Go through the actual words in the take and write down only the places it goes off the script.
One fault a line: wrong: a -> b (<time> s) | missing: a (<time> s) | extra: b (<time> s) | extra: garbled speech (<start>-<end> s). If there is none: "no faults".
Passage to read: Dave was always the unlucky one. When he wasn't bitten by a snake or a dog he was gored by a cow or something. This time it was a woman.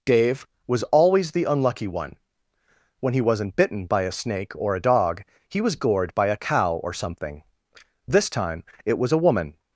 no faults